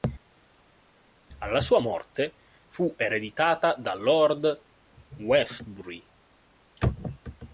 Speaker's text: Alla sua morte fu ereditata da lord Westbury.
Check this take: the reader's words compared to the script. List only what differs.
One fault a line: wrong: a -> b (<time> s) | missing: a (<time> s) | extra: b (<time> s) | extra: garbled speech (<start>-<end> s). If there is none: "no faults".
no faults